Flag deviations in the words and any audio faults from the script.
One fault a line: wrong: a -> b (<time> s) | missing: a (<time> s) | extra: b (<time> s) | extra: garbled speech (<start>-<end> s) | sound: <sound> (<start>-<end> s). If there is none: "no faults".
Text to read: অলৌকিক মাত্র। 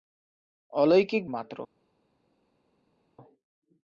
no faults